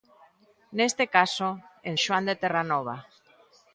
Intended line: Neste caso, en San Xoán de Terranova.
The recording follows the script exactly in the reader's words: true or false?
false